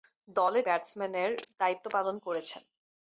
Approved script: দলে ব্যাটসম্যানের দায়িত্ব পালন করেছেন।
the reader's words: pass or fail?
pass